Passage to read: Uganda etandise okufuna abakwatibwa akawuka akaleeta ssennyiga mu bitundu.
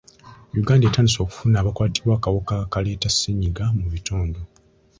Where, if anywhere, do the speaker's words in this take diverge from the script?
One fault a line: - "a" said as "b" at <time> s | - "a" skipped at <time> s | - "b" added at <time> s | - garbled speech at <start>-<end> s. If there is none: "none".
none